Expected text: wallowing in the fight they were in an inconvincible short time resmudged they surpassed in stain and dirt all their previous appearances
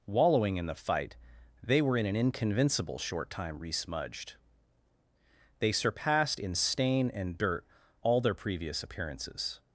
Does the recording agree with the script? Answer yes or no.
yes